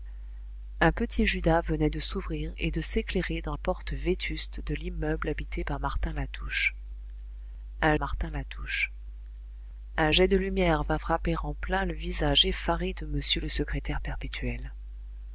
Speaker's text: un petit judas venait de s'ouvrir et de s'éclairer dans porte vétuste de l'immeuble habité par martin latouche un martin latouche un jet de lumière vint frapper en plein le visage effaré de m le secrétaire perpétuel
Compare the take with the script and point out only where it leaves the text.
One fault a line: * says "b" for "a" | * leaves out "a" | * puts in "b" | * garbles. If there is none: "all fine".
all fine